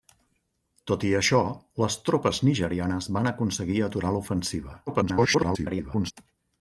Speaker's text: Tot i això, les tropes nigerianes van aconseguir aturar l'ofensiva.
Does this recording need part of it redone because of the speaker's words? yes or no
yes